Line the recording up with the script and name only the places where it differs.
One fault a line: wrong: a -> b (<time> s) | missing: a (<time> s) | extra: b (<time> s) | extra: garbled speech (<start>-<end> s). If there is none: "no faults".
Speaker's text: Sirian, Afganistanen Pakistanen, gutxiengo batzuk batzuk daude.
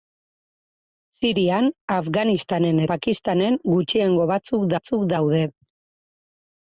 no faults